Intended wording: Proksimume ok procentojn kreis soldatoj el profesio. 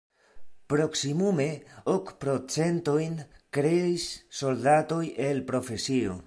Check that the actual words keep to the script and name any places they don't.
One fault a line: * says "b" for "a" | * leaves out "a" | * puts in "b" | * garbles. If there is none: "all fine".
all fine